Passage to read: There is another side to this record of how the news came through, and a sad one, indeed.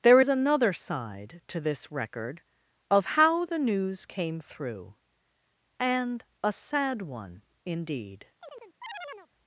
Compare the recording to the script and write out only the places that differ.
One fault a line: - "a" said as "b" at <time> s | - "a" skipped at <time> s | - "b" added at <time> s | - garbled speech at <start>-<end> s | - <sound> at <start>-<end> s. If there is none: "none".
- chirp at 8.4-9.3 s